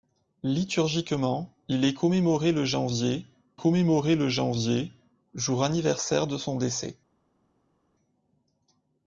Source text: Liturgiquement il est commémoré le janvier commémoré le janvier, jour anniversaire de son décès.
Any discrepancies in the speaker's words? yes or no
no